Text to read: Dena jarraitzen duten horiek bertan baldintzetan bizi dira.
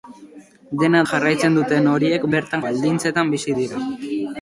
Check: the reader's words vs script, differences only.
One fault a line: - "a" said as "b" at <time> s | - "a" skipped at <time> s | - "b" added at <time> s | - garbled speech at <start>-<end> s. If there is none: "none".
none